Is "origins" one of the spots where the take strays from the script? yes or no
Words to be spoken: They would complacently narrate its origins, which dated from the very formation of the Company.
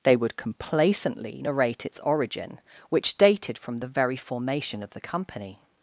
yes